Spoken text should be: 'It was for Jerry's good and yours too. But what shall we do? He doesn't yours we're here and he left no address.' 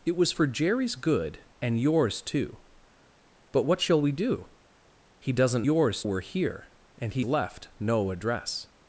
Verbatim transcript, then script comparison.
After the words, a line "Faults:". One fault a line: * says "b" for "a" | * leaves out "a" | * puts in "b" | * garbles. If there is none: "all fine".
'It was for Jerry's good and yours too. But what shall we do? He doesn't yours we're here and he left no address.'
Faults:
all fine